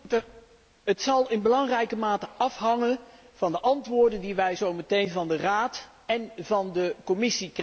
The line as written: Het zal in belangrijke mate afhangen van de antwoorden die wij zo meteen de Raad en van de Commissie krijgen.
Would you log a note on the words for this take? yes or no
yes